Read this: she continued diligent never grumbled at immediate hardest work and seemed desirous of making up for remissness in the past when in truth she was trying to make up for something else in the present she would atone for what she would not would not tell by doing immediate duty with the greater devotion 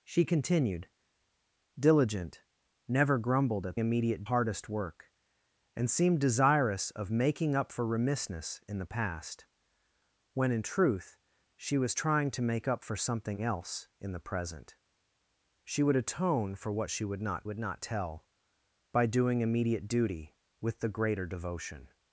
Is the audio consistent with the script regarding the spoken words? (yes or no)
yes